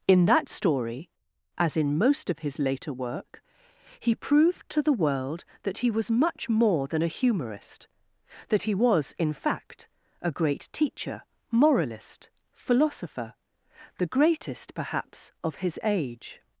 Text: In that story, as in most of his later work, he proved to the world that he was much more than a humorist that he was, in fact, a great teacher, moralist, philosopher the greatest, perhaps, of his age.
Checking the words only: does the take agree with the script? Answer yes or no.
yes